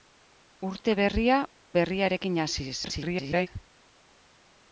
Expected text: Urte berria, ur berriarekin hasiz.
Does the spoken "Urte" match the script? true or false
true